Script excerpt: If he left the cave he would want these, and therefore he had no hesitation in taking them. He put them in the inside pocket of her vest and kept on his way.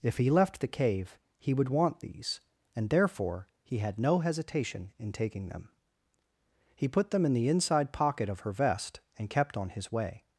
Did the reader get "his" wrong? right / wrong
right